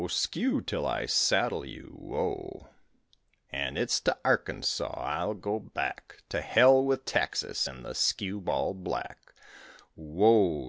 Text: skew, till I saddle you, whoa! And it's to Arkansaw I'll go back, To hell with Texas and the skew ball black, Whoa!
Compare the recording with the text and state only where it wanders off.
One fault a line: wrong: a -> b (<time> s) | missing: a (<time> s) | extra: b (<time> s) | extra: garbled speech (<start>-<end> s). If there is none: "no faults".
no faults